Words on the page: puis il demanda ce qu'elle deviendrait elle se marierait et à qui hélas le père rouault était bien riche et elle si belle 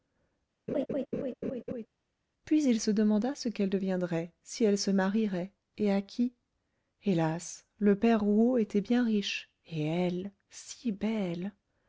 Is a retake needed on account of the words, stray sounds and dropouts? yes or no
yes